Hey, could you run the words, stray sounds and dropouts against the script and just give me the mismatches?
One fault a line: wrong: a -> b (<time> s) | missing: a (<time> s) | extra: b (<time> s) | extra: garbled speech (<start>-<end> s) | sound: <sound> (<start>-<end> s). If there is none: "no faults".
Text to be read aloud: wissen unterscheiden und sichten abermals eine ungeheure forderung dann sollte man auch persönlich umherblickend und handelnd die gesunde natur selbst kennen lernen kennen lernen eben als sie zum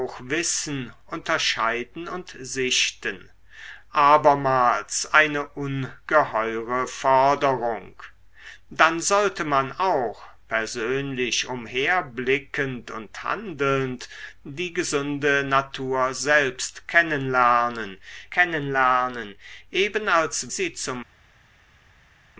no faults